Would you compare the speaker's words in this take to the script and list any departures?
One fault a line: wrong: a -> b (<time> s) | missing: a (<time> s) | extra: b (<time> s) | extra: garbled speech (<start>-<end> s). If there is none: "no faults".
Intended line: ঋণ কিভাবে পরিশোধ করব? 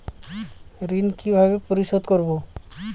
no faults